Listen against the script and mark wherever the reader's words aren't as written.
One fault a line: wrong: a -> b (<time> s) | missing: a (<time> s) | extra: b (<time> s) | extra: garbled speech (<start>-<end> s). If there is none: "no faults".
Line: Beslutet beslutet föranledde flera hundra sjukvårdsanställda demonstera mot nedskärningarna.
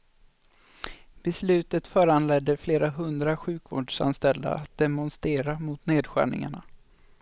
missing: beslutet (1.9 s)
extra: att (4.5 s)